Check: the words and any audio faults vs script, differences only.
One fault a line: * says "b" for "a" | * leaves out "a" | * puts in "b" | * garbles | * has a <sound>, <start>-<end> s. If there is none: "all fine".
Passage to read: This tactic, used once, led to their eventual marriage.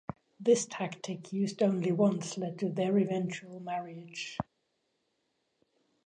* puts in "only"